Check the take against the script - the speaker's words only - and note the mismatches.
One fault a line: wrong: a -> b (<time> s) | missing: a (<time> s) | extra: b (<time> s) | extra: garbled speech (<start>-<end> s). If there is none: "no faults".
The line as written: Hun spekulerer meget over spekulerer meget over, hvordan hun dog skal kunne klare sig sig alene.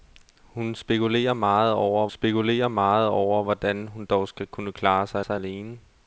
no faults